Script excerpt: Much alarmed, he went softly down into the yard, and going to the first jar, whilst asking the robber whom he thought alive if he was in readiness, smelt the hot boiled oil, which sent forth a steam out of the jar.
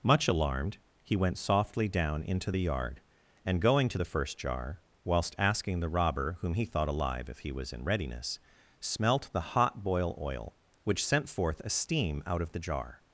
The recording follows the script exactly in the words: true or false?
false